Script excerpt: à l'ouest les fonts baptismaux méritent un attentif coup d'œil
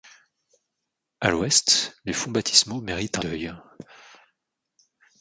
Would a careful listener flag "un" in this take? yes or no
yes